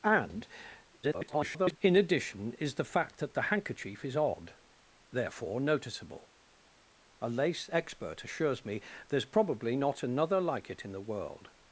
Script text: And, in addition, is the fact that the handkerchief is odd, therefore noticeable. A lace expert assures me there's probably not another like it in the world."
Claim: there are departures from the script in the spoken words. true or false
true